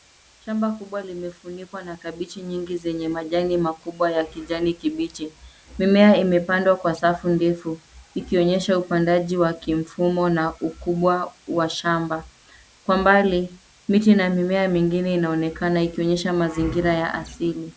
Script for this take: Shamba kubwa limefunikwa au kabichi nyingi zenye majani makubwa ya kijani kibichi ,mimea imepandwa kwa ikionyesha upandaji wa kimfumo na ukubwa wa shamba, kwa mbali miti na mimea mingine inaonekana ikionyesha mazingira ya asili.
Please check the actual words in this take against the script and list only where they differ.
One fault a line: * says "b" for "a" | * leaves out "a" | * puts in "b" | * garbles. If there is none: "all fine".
* says "na" for "au"
* puts in "safu ndefu"